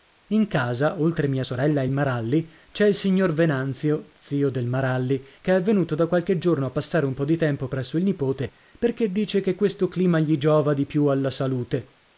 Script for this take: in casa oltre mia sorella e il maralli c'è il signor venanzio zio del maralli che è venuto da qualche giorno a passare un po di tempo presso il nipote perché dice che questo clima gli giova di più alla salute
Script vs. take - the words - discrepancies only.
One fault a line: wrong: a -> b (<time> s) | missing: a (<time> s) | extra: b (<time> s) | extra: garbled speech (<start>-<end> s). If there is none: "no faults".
no faults